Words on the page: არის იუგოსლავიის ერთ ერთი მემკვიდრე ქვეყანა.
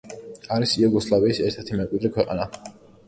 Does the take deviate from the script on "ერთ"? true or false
false